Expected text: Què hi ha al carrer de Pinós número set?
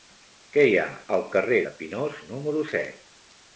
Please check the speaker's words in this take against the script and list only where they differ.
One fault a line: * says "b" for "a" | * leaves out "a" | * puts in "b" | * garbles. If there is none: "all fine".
all fine